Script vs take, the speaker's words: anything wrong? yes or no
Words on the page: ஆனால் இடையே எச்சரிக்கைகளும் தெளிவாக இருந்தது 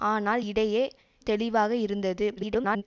yes